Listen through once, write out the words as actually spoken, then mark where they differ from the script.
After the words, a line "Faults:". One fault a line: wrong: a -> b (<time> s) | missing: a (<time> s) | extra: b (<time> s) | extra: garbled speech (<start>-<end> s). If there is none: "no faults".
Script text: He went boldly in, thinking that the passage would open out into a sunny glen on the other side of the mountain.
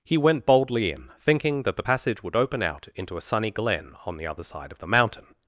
He went boldly in, thinking that the passage would open out into a sunny glen on the other side of the mountain.
Faults:
no faults